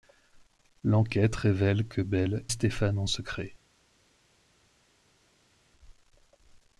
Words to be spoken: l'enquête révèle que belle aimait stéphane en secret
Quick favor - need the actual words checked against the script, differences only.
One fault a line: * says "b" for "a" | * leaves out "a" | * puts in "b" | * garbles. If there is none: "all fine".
* leaves out "aimait"